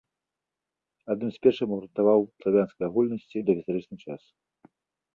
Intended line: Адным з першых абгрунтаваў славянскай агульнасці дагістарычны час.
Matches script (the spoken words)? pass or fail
pass